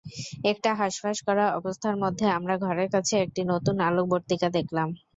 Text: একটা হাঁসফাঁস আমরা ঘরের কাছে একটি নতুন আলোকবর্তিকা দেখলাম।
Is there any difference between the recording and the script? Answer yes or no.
yes